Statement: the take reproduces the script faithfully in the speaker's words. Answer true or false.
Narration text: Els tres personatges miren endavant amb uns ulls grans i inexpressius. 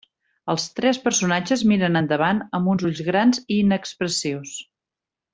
true